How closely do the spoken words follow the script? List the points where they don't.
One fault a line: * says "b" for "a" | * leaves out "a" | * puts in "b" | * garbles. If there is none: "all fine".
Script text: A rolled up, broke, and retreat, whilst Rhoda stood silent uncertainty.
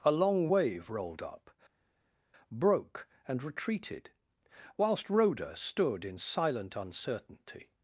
* puts in "long wave"
* says "retreated" for "retreat"
* puts in "in"